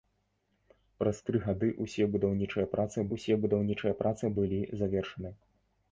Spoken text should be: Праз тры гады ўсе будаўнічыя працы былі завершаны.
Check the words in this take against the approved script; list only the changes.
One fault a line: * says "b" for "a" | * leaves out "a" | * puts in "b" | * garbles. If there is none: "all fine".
* puts in "ўсе будаўнічыя працы"